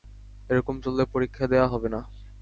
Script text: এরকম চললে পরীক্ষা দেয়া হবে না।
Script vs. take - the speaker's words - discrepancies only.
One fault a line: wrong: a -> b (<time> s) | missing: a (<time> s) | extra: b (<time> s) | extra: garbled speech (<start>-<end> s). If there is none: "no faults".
no faults